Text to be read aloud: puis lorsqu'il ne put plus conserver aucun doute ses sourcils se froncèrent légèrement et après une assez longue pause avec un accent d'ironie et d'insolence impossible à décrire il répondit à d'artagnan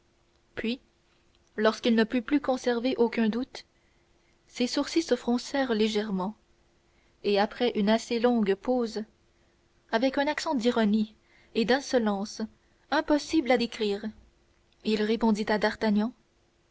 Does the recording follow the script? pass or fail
pass